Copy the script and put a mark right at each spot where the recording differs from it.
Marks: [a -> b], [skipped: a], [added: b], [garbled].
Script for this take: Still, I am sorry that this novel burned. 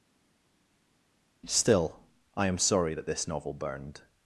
Still, I am sorry that this novel burned.